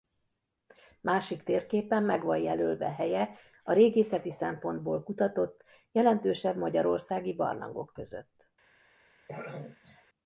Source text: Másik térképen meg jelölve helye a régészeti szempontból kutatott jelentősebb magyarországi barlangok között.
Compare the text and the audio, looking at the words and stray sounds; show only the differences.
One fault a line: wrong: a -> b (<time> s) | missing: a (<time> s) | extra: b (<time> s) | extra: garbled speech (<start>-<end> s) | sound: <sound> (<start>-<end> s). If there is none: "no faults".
extra: van (2.2 s)
sound: throat clearing (9.3-10.1 s)